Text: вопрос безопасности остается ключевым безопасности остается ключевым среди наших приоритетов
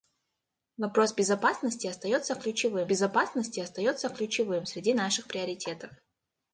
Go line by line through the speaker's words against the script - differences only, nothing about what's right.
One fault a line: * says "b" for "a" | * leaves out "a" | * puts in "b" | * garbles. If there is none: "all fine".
all fine